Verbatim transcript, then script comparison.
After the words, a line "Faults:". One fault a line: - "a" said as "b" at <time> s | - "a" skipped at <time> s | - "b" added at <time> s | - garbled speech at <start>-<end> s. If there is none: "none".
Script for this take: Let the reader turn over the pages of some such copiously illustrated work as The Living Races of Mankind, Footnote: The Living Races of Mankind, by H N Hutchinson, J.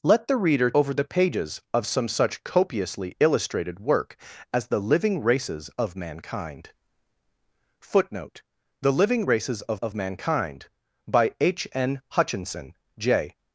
Let the reader over the pages of some such copiously illustrated work as The Living Races of Mankind, Footnote: The Living Races of of Mankind, by H N Hutchinson, J.
Faults:
- "turn" skipped at 0.7 s
- "of" added at 9.7 s